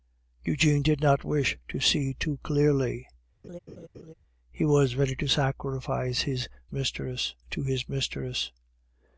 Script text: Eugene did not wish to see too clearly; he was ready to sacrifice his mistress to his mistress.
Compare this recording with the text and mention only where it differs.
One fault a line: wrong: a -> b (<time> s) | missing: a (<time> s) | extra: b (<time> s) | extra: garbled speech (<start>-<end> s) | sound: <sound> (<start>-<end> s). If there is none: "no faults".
sound: laugh (3.4-4.1 s)